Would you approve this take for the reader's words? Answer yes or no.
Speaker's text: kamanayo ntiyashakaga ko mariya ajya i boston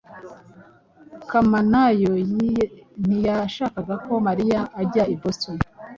yes